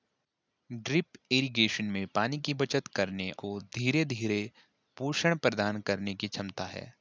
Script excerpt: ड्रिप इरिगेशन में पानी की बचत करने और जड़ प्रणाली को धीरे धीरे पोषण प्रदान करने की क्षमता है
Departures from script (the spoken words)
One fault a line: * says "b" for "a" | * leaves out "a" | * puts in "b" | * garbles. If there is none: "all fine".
* leaves out "और जड़ प्रणाली"